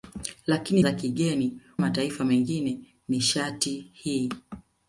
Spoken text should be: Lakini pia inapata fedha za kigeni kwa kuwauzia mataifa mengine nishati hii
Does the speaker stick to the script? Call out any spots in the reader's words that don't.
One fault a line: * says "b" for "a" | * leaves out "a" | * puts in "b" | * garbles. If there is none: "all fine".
* leaves out "pia inapata fedha"
* leaves out "kwa kuwauzia"